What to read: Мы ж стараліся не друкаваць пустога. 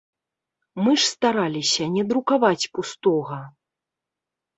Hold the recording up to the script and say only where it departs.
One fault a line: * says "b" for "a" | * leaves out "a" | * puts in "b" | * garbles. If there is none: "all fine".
all fine